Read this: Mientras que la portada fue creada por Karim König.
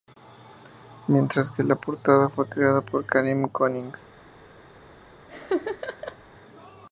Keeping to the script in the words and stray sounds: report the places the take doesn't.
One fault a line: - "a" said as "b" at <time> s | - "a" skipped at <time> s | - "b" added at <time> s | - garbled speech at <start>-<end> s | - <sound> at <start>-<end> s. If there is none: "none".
- laugh at 5.3-6.2 s